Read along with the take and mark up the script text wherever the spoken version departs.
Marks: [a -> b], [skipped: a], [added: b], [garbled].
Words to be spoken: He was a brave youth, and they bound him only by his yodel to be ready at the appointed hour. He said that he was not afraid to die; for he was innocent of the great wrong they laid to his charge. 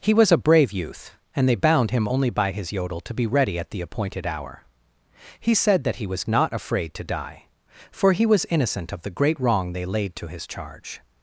He was a brave youth, and they bound him only by his yodel to be ready at the appointed hour. He said that he was not afraid to die; for he was innocent of the great wrong they laid to his charge.